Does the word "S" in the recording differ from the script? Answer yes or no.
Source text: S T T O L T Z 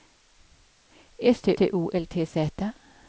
no